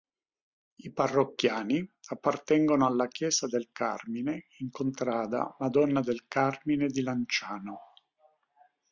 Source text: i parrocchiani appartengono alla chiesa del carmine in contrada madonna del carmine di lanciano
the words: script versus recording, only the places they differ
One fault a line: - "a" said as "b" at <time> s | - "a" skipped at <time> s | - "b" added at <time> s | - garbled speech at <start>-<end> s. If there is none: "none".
none